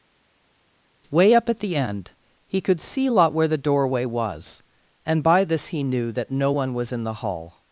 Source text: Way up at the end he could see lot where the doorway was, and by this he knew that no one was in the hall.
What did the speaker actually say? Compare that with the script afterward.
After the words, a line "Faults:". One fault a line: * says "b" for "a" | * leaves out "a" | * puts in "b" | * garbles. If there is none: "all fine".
Way up at the end he could see lot where the doorway was, and by this he knew that no one was in the hall.
Faults:
all fine